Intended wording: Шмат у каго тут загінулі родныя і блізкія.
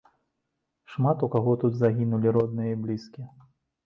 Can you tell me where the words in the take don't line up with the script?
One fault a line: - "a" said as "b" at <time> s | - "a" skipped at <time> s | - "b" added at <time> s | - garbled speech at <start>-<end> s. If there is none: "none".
none